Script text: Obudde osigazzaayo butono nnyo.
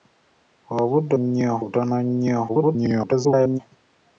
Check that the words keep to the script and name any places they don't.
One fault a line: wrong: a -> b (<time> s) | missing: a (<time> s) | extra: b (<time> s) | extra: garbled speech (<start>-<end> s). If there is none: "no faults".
wrong: osigazzaayo -> nnyo (1.2 s)
extra: garbled speech (2.5-3.6 s)